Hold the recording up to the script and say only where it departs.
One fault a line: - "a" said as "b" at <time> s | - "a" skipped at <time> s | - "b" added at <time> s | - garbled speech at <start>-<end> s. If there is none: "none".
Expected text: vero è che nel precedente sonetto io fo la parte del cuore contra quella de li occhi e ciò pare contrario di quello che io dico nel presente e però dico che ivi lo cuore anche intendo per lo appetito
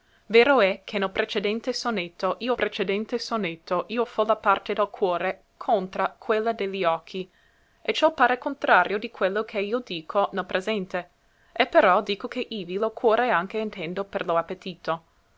- "precedente sonetto io" added at 2.5 s